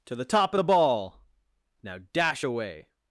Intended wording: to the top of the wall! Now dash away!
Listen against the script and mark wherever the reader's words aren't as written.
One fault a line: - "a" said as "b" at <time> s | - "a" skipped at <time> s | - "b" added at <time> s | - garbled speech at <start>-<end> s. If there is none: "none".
- "wall" said as "ball" at 0.6 s